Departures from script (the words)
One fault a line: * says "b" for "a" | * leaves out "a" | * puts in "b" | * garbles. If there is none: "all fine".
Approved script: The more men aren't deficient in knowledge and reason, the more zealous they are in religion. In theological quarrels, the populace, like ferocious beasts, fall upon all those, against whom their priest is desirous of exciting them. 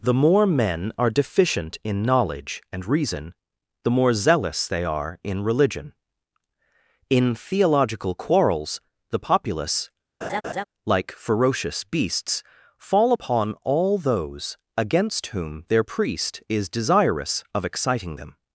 * says "are" for "aren't"